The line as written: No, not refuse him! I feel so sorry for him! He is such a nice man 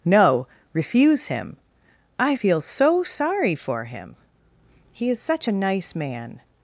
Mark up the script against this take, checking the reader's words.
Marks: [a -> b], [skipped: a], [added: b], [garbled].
No, [skipped: not] refuse him! I feel so sorry for him! He is such a nice man